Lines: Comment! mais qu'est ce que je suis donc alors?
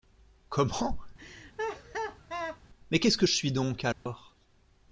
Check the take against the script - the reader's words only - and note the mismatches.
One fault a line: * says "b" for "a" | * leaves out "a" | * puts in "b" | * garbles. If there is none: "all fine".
all fine